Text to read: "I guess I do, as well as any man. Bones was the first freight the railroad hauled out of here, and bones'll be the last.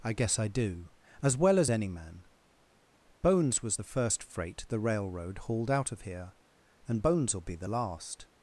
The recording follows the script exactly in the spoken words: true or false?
true